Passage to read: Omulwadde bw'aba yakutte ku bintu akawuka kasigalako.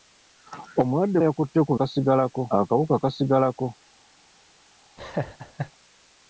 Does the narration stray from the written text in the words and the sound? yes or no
yes